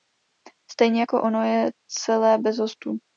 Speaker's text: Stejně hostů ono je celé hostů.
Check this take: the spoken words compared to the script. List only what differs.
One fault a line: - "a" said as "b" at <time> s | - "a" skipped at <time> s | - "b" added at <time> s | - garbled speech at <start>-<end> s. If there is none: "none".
- "hostů" said as "jako" at 1.0 s
- "bez" added at 2.4 s